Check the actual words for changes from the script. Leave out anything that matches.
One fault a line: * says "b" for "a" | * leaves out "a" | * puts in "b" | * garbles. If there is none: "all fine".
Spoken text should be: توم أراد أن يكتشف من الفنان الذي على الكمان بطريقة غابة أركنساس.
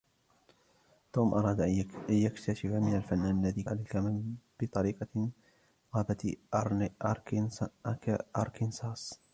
all fine